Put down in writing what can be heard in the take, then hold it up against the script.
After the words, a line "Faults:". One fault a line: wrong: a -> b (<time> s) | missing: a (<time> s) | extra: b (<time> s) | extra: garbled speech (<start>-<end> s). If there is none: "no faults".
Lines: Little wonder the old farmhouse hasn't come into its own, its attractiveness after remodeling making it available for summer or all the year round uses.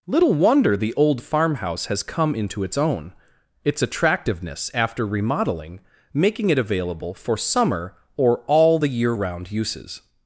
Little wonder the old farmhouse has come into its own, its attractiveness after remodeling making it available for summer or all the year round uses.
Faults:
wrong: hasn't -> has (1.9 s)